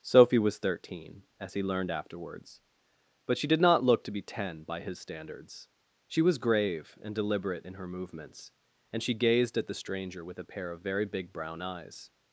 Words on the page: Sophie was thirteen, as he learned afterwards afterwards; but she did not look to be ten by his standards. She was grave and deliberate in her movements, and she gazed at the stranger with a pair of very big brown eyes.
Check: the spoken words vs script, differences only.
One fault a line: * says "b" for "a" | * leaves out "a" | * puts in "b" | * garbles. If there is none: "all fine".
* leaves out "afterwards"